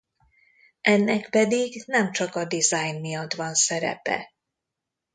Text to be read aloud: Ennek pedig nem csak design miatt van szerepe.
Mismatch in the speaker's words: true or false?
true